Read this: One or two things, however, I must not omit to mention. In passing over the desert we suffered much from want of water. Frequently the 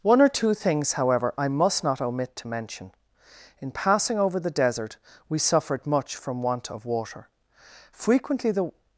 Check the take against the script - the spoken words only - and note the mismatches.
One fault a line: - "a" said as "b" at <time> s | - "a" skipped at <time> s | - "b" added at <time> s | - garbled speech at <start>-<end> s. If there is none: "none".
none